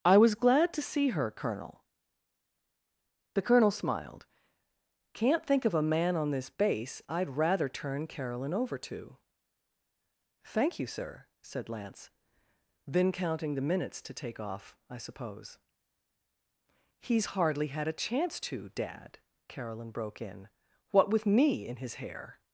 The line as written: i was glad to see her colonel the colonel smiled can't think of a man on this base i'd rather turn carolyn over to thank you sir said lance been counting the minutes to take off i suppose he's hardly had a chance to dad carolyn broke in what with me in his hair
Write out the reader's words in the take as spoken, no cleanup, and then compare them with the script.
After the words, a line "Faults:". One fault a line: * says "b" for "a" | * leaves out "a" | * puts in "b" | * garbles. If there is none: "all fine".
i was glad to see her colonel the colonel smiled can't think of a man on this base i'd rather turn carolyn over to thank you sir said lance then counting the minutes to take off i suppose he's hardly had a chance to dad carolyn broke in what with me in his hair
Faults:
* says "then" for "been"